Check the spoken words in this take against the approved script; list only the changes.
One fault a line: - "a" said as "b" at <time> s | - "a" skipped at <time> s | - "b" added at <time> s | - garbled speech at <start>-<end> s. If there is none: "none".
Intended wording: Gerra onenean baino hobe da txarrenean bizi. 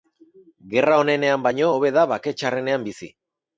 - "bake" added at 2.2 s